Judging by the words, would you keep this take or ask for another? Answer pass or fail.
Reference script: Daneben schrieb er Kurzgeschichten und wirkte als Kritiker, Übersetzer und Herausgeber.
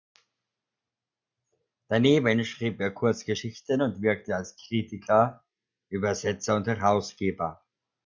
pass